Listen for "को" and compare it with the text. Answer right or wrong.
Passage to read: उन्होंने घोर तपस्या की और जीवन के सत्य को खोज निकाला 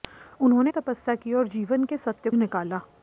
wrong